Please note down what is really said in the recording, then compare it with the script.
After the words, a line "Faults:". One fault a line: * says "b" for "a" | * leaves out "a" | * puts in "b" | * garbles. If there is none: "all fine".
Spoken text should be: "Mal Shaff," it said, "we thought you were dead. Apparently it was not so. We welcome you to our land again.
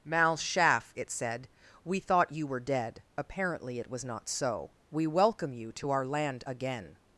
"Mal Shaff," it said, "we thought you were dead. Apparently it was not so. We welcome you to our land again.
Faults:
all fine